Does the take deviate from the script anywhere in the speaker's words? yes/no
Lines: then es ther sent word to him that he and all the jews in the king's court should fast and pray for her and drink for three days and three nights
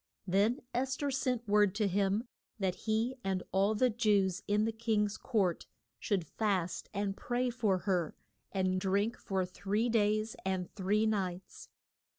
no